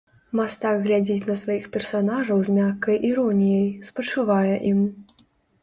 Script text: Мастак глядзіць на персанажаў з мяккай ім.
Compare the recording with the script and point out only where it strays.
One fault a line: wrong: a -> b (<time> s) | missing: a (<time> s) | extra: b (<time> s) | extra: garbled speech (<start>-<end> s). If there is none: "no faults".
extra: сваіх (1.4 s)
extra: іроніяй спачувае (3.1 s)